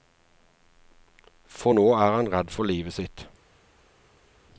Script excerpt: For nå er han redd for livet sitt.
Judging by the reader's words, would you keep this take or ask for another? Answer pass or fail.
pass